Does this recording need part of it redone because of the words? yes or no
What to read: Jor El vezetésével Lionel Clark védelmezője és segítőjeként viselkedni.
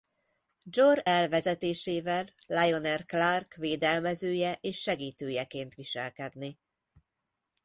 no